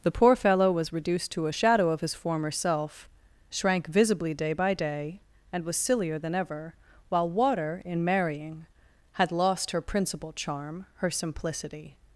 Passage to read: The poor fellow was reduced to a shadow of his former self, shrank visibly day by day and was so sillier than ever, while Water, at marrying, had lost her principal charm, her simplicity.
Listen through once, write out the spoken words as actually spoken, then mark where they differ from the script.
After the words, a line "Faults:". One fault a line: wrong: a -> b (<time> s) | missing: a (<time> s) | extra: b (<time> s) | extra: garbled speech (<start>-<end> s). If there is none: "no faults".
The poor fellow was reduced to a shadow of his former self, shrank visibly day by day and was sillier than ever, while Water, in marrying, had lost her principal charm, her simplicity.
Faults:
missing: so (5.8 s)
wrong: at -> in (7.8 s)